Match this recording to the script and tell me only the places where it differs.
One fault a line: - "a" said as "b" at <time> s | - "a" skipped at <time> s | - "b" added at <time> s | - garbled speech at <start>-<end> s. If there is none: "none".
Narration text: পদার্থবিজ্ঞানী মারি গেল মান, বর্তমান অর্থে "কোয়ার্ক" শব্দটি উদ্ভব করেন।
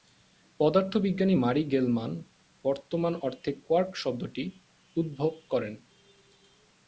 none